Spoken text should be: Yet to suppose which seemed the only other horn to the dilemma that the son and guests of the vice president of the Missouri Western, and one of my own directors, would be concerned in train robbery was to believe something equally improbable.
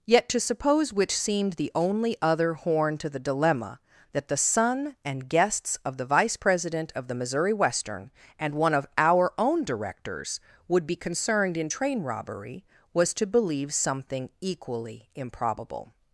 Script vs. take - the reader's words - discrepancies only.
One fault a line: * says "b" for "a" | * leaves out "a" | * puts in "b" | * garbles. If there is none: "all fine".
* says "our" for "my"